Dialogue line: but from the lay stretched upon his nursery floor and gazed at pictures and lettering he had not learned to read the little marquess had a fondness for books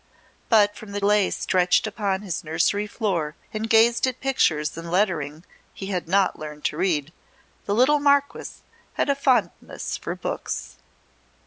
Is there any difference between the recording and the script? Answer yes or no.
no